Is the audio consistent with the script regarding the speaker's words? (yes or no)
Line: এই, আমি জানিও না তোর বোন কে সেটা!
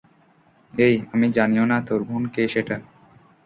yes